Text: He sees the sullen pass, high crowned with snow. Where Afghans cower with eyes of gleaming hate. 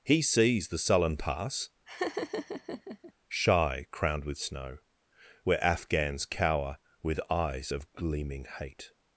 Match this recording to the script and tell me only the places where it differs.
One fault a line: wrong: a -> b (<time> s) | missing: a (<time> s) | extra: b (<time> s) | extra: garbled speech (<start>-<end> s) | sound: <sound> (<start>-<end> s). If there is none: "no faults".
sound: laugh (1.9-3.1 s)
wrong: high -> shy (3.3 s)